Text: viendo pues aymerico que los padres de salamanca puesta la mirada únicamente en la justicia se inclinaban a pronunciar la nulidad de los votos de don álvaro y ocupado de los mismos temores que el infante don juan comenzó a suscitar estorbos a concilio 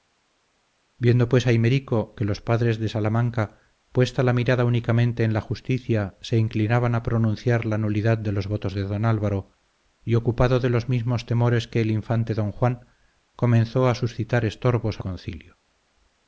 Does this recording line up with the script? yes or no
yes